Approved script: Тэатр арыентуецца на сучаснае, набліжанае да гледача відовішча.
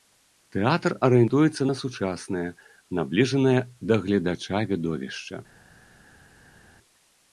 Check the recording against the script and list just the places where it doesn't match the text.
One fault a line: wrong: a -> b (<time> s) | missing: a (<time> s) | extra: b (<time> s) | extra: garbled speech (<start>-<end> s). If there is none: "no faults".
no faults